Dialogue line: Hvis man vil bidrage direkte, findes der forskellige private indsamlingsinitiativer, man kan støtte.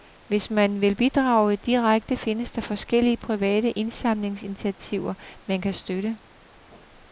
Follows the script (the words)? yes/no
yes